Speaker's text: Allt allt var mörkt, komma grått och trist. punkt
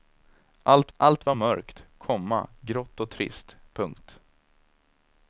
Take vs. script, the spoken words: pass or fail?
pass